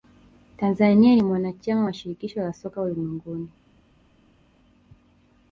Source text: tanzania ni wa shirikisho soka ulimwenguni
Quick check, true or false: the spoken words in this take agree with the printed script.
false